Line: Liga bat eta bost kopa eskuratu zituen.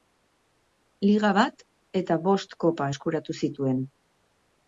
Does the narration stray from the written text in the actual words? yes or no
no